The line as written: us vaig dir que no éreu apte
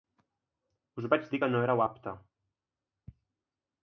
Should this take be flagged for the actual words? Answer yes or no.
no